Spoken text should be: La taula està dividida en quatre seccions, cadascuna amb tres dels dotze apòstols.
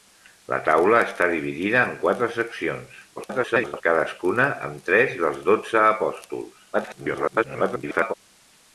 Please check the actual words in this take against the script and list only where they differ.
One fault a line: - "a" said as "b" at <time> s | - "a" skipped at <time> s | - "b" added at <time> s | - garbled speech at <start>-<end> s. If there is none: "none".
- garbled speech at 3.2-3.8 s
- garbled speech at 6.7-8.1 s